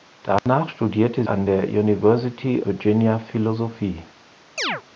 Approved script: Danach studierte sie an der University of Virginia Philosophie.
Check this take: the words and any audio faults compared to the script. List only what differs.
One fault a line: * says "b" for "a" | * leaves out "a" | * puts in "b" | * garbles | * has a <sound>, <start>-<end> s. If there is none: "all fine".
* has a dropout, 0.4-0.5 s
* leaves out "sie"
* leaves out "of"
* has a chirp, 4.6-4.8 s